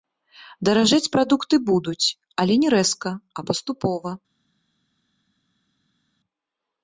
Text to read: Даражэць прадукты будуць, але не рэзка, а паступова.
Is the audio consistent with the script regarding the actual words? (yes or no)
yes